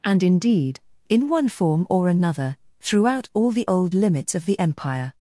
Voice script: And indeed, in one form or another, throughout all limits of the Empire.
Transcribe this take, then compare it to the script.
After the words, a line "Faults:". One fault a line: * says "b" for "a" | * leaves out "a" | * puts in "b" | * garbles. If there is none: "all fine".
And indeed, in one form or another, throughout all the old limits of the Empire.
Faults:
* puts in "the old"